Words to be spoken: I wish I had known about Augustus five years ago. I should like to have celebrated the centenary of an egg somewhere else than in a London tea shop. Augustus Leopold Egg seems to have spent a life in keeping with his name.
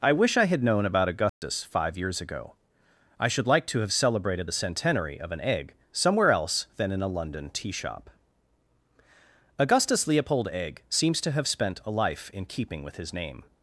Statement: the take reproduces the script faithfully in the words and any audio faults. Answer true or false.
false